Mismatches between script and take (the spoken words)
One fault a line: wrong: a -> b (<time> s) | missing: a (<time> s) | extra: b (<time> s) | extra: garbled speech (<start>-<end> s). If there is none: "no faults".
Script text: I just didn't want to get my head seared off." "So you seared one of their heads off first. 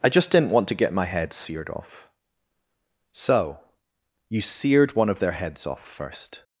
no faults